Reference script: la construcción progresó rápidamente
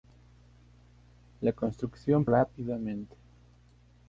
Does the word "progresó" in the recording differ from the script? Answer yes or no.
yes